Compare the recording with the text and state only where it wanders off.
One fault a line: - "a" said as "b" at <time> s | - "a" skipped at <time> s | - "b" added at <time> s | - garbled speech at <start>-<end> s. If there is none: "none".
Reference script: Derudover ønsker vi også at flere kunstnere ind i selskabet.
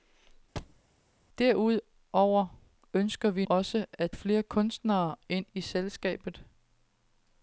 none